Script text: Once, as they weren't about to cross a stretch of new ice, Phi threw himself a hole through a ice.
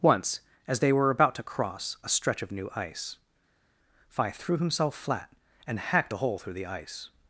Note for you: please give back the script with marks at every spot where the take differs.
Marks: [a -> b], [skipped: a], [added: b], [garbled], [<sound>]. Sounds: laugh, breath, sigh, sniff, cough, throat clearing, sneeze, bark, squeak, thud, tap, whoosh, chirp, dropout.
Once, as they [weren't -> were] about to cross a stretch of new ice, Phi threw himself [added: flat and hacked] a hole through [a -> the] ice.